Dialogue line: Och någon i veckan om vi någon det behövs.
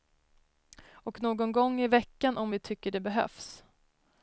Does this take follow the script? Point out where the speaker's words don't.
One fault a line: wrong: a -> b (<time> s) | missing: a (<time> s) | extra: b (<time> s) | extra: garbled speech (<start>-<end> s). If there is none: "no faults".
extra: gång (1.5 s)
wrong: någon -> tycker (2.6 s)